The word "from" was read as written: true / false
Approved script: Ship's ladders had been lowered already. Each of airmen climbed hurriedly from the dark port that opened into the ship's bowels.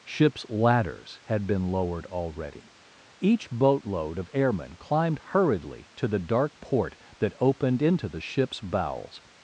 false